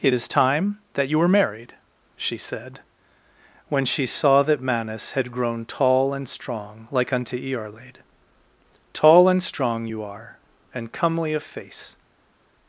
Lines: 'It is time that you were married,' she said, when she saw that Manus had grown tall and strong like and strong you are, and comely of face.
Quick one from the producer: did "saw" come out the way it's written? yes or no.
yes